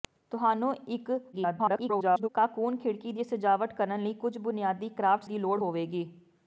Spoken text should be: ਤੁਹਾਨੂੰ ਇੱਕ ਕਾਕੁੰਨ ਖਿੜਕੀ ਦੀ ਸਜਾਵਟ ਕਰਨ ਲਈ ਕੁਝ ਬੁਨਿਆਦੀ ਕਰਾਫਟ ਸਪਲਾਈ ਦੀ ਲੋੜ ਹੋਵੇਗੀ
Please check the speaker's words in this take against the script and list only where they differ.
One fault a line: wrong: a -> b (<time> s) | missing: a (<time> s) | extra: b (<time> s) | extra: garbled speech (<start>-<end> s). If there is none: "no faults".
extra: garbled speech (1.3-2.3 s)
missing: ਸਪਲਾਈ (5.2 s)